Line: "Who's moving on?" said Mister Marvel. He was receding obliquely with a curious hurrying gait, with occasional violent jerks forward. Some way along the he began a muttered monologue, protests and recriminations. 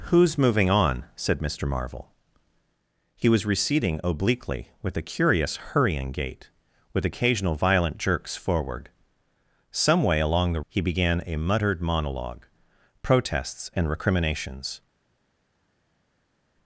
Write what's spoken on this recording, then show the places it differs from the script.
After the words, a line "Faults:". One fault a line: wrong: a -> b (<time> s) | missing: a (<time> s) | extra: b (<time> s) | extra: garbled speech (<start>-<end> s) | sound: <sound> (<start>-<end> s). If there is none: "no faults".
"Who's moving on?" said Mister Marvel. He was receding obliquely with a curious hurrying gait, with occasional violent jerks forward. Some way along the he began a muttered monologue, protests and recriminations.
Faults:
no faults